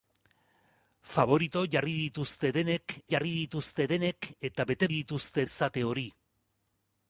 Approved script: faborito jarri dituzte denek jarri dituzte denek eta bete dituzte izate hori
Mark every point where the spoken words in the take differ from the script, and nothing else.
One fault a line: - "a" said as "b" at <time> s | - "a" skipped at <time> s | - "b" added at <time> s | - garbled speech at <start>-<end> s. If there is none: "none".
none